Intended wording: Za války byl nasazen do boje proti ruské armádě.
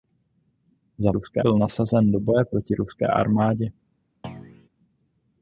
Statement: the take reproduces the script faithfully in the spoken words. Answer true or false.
false